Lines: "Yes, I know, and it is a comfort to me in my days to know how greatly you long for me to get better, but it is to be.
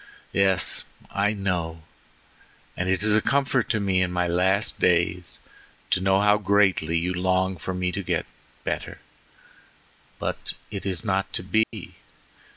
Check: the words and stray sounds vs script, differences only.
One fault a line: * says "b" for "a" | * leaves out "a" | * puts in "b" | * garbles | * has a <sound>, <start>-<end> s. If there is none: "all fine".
* puts in "last"
* puts in "not"
* has a dropout, 11.6-11.7 s